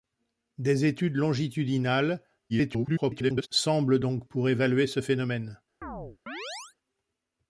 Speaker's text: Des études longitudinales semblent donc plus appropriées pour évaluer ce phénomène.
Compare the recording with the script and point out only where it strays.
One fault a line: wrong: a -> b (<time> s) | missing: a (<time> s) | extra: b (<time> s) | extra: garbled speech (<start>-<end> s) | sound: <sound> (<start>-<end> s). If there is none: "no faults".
extra: garbled speech (2.5-3.5 s)
missing: plus appropriées (4.3 s)
sound: chirp (5.8-6.8 s)